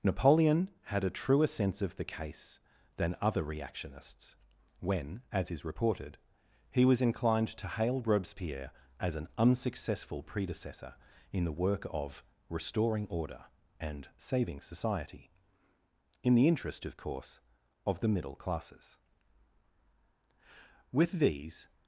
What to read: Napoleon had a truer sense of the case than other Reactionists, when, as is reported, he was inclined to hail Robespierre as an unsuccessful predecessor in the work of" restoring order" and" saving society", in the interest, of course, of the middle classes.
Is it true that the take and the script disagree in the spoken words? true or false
true